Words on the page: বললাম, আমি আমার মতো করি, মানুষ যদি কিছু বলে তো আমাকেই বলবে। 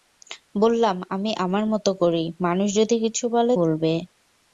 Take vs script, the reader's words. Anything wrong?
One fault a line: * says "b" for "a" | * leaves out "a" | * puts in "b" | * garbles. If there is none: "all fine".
* leaves out "তো আমাকেই"